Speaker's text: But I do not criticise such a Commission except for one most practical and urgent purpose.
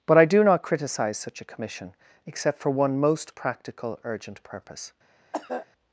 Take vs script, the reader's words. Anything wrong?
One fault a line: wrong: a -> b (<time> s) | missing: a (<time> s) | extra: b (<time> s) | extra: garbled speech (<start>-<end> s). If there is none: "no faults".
missing: and (4.0 s)